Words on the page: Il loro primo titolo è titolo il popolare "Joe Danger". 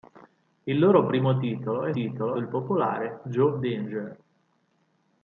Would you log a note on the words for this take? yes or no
no